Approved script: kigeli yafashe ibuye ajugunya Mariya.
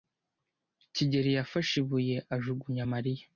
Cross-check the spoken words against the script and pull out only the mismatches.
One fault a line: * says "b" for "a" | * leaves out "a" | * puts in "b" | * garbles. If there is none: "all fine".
all fine